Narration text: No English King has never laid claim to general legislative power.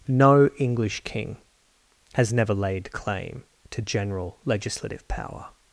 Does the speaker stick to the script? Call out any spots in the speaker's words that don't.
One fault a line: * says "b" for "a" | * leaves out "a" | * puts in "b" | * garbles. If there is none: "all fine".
all fine